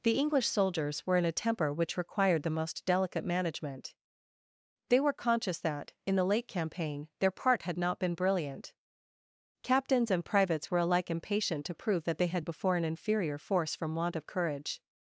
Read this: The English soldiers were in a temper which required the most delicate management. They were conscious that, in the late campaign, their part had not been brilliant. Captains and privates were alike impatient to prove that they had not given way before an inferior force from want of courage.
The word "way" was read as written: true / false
false